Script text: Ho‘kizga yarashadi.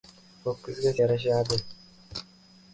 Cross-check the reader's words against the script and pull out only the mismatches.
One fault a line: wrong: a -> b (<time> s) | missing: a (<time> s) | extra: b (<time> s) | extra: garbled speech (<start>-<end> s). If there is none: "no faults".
no faults